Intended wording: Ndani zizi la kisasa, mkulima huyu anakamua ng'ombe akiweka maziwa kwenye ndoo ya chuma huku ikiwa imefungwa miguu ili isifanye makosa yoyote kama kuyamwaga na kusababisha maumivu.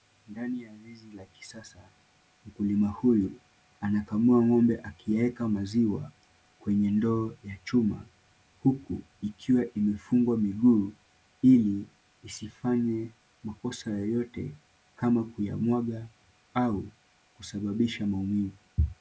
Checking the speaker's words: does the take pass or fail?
fail